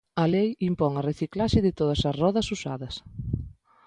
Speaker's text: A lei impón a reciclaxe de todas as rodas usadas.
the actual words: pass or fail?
pass